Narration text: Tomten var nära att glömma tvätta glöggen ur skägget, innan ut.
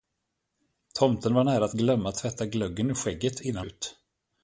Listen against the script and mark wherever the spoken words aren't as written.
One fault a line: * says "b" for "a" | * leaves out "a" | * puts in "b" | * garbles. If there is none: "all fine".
all fine